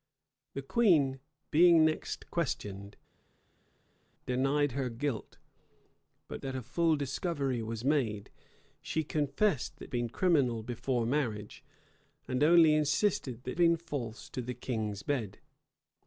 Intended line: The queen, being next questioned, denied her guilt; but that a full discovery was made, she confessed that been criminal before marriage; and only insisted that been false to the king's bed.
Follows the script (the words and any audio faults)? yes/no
yes